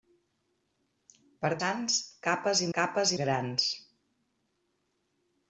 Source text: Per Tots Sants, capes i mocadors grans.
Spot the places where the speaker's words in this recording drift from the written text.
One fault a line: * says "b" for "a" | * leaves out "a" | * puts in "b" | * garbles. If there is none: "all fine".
* leaves out "Tots"
* says "capes" for "mocadors"